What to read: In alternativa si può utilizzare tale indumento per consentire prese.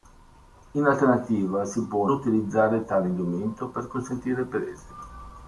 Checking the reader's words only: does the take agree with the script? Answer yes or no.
yes